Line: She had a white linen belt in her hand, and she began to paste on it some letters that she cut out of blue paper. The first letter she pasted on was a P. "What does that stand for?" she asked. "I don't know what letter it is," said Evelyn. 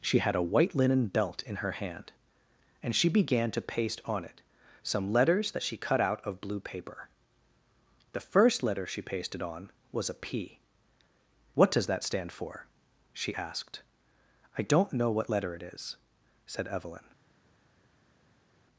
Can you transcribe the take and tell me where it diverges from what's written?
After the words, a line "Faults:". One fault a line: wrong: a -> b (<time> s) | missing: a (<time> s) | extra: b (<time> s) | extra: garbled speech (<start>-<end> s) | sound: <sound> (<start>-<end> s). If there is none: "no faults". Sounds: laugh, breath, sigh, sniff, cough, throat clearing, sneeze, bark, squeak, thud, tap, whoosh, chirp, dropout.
She had a white linen belt in her hand, and she began to paste on it some letters that she cut out of blue paper. The first letter she pasted on was a P. "What does that stand for?" she asked. "I don't know what letter it is," said Evelyn.
Faults:
no faults